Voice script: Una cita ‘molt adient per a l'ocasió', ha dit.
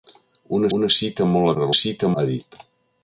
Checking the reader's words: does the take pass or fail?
fail